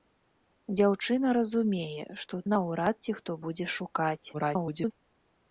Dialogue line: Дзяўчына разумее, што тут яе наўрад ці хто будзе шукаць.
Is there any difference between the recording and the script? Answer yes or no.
yes